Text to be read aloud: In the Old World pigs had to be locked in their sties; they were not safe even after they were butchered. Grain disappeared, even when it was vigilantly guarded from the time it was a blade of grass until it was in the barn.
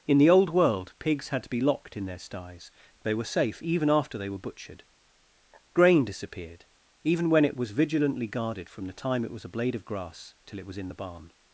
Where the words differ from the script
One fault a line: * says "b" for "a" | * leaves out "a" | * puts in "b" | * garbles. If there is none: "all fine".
* leaves out "not"
* says "till" for "until"